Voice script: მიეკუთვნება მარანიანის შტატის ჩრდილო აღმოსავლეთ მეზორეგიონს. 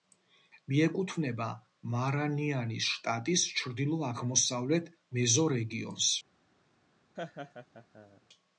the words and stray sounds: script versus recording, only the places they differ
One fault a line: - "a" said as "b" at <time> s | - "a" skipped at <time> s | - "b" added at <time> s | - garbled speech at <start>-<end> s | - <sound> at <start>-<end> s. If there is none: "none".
- laugh at 7.2-8.2 s